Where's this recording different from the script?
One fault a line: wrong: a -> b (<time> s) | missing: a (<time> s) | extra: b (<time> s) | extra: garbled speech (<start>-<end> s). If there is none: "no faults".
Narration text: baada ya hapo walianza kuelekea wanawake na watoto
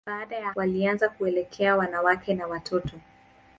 missing: hapo (0.5 s)